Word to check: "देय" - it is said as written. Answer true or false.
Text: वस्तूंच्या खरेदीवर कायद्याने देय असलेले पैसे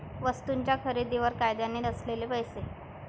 false